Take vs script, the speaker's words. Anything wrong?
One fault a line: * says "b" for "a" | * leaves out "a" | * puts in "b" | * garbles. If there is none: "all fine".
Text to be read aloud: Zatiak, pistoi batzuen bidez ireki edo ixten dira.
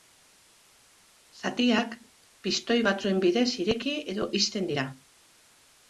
all fine